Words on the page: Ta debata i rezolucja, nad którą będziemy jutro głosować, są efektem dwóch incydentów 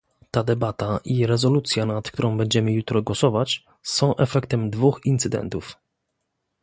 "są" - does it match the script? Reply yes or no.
yes